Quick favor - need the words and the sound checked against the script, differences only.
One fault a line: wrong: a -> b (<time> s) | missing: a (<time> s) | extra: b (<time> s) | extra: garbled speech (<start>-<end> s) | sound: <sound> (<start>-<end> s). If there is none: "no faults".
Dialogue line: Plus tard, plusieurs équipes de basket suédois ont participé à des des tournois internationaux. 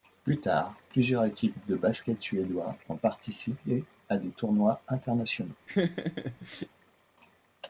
missing: des (4.3 s)
sound: laugh (5.7-6.7 s)